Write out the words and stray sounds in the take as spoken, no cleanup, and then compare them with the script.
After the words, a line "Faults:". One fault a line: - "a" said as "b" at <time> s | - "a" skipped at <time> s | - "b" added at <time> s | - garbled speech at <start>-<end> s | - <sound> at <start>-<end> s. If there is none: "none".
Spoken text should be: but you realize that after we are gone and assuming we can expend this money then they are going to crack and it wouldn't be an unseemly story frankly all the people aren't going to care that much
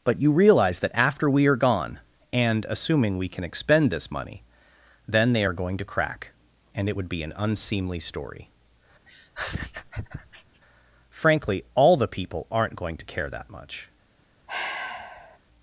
but you realize that after we are gone and assuming we can expend this money then they are going to crack and it would be an unseemly story frankly all the people aren't going to care that much
Faults:
- "wouldn't" said as "would" at 6.9 s
- laugh at 9.1-10.6 s
- sigh at 14.5-15.4 s